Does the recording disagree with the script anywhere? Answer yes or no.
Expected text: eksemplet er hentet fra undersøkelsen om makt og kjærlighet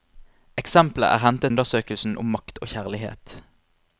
yes